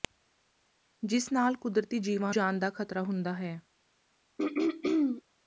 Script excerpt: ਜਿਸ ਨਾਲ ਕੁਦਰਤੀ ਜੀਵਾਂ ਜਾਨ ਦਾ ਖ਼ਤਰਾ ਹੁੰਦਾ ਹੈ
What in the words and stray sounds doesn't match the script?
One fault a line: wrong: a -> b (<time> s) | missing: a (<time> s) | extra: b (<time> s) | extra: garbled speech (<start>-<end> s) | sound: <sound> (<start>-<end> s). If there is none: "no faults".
sound: throat clearing (4.4-5.2 s)